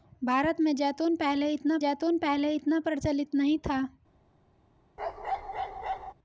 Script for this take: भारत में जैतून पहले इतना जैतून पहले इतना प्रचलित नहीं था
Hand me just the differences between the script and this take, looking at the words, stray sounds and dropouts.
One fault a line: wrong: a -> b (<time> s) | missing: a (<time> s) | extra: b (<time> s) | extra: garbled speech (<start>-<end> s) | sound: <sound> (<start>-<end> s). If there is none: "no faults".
sound: bark (5.0-6.1 s)